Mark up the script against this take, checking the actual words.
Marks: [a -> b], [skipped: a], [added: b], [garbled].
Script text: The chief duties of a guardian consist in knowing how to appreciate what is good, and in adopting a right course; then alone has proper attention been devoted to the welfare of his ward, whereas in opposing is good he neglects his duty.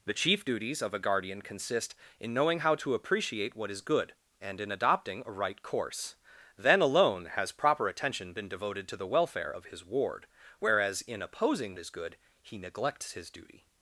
The chief duties of a guardian consist in knowing how to appreciate what is good, and in adopting a right course; then alone has proper attention been devoted to the welfare of his ward, whereas in opposing is good he neglects his duty.